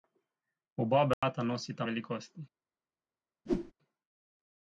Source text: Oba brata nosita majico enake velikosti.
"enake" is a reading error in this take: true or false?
true